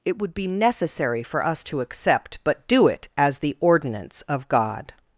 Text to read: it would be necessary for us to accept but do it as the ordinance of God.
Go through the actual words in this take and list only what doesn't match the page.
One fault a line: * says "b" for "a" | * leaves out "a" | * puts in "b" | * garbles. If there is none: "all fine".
all fine